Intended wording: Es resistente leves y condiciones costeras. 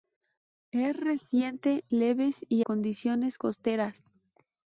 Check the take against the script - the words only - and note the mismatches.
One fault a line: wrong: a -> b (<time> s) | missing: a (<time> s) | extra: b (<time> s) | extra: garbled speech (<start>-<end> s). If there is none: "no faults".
no faults